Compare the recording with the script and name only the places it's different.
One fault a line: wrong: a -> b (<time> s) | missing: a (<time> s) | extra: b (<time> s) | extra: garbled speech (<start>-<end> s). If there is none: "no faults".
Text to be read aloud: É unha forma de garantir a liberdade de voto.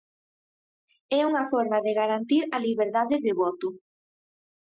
no faults